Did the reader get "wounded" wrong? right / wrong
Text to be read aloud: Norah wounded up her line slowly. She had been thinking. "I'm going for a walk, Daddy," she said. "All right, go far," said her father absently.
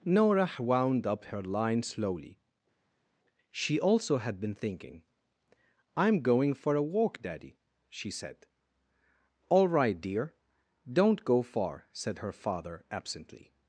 wrong